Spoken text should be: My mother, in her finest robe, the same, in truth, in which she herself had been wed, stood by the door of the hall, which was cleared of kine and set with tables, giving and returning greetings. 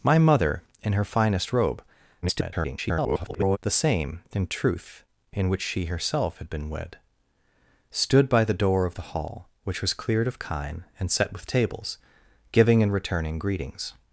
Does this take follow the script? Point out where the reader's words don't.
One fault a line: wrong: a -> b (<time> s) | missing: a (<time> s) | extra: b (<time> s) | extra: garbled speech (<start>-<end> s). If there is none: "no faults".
extra: garbled speech (2.2-3.6 s)